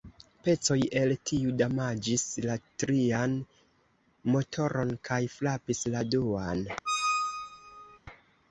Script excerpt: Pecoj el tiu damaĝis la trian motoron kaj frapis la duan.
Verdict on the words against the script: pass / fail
pass